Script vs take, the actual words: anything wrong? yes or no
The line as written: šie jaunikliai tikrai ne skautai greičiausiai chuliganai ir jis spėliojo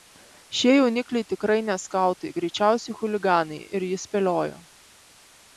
no